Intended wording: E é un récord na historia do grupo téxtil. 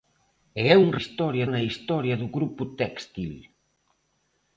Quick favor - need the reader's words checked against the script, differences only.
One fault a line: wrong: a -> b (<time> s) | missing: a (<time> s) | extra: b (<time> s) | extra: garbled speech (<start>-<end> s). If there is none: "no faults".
wrong: récord -> historia (1.0 s)